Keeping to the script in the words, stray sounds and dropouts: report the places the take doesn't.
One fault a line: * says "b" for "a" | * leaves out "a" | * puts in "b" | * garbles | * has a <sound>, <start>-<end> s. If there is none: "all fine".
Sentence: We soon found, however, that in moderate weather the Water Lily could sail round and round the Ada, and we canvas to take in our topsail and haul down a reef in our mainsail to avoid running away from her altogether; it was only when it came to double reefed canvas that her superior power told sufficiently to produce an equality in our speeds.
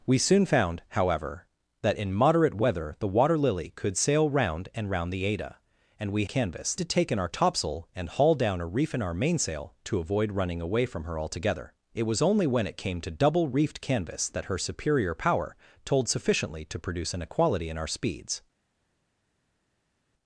all fine